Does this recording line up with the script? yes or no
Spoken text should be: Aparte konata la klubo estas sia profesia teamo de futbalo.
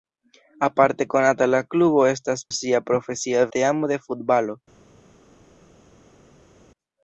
yes